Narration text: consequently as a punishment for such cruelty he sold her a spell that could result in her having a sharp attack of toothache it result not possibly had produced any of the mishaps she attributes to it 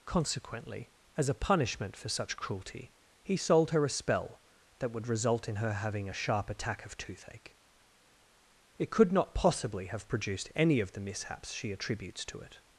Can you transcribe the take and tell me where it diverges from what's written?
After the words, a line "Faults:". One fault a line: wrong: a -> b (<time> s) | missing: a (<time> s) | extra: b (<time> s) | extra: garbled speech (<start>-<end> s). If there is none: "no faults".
consequently as a punishment for such cruelty he sold her a spell that would result in her having a sharp attack of toothache it could not possibly have produced any of the mishaps she attributes to it
Faults:
wrong: could -> would (4.9 s)
wrong: result -> could (8.9 s)
wrong: had -> have (9.9 s)